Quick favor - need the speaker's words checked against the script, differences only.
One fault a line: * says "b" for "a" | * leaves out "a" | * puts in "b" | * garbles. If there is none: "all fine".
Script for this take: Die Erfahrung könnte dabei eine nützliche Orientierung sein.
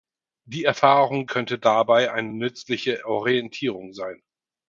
all fine